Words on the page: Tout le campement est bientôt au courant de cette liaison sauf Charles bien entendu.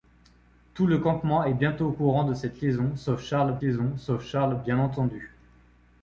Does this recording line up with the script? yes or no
no